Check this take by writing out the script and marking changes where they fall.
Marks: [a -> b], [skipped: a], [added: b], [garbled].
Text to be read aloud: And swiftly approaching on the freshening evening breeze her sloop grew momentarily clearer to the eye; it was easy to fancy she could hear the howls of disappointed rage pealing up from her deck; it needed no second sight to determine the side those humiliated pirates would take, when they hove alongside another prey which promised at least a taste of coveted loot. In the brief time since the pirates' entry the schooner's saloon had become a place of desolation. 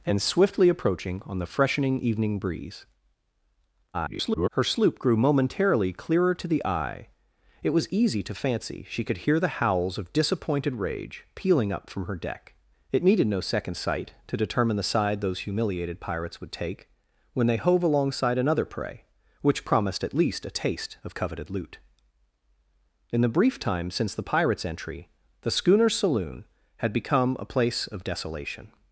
And swiftly approaching on the freshening evening breeze [garbled] her sloop grew momentarily clearer to the eye; it was easy to fancy she could hear the howls of disappointed rage pealing up from her deck; it needed no second sight to determine the side those humiliated pirates would take, when they hove alongside another prey which promised at least a taste of coveted loot. In the brief time since the pirates' entry the schooner's saloon had become a place of desolation.